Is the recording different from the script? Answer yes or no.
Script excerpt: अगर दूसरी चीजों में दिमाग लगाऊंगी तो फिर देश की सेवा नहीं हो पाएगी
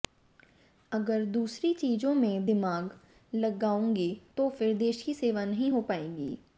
no